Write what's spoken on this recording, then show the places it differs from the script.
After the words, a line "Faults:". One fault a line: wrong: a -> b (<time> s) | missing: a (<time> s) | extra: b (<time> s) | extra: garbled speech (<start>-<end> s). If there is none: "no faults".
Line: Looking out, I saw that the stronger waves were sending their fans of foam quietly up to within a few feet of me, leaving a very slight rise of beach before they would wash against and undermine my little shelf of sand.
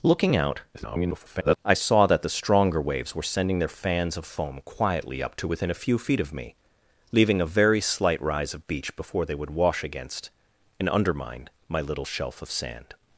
Looking out, [garbled] I saw that the stronger waves were sending their fans of foam quietly up to within a few feet of me, leaving a very slight rise of beach before they would wash against and undermine my little shelf of sand.
Faults:
extra: garbled speech (0.7-1.6 s)